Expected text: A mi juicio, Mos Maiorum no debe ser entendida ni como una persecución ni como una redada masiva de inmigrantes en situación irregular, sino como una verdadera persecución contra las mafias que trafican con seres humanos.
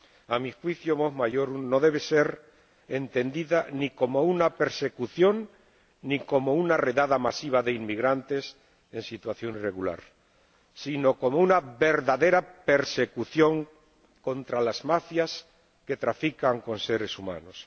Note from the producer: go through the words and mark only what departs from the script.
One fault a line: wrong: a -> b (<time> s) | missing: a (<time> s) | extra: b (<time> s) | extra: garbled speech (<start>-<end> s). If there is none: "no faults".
no faults